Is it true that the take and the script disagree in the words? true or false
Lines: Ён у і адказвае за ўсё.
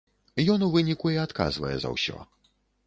true